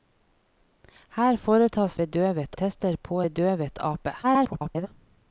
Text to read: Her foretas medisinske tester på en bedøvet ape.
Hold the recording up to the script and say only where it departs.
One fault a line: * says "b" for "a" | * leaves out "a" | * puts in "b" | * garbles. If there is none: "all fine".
* says "bedøvet" for "medisinske"
* leaves out "en"
* garbles